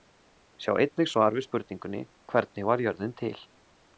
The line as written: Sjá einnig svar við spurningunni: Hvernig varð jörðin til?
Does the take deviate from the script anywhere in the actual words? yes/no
no